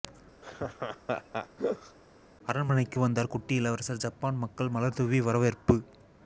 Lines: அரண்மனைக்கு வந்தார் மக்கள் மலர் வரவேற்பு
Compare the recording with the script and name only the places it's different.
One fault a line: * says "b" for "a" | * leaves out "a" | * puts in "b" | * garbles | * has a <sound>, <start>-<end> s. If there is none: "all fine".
* has a laugh, 0.4-2.0 s
* puts in "குட்டி இளவரசர் ஜப்பான்"
* puts in "தூவி"